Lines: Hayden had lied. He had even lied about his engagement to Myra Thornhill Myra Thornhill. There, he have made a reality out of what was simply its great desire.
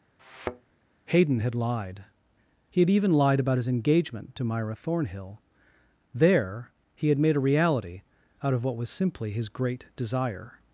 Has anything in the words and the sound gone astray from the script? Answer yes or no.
yes